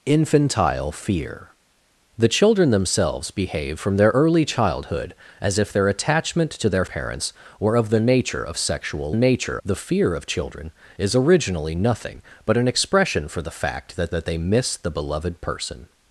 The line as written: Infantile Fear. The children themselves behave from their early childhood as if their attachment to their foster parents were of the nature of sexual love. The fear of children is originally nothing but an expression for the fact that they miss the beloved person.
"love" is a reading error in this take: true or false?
true